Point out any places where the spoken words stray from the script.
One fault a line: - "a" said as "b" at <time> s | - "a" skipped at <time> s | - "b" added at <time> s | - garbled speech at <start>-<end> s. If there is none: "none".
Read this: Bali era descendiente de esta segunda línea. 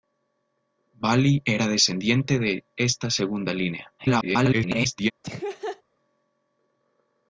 - garbled speech at 4.0-5.1 s